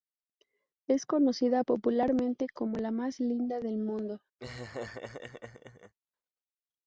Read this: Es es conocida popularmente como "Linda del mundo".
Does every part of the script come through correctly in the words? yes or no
no